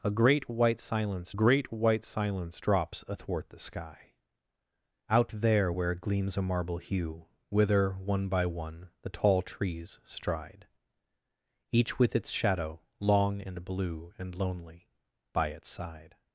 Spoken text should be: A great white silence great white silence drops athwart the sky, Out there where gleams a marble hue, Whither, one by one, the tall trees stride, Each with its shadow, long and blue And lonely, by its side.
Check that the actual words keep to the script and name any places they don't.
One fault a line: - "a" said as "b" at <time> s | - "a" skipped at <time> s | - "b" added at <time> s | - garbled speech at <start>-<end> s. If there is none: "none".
none